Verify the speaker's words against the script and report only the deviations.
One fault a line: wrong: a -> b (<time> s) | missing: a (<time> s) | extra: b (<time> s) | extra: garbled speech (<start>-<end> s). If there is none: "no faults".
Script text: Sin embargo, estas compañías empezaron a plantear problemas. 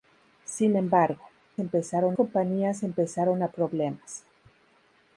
wrong: estas -> empezaron (1.6 s)
missing: plantear (3.5 s)